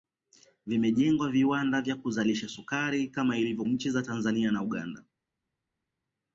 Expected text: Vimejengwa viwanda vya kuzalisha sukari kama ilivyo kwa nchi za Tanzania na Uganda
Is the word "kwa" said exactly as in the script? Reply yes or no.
no